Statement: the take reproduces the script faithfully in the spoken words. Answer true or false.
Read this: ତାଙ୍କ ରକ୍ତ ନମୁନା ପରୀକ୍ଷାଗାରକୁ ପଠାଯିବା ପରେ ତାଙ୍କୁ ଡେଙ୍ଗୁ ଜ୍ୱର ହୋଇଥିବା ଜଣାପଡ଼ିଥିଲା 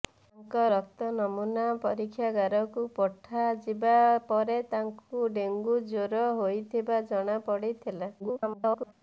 false